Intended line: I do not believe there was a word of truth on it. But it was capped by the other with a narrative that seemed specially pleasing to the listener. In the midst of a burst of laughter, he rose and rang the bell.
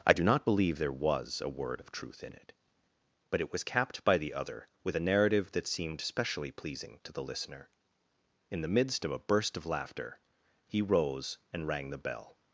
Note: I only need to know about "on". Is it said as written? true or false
false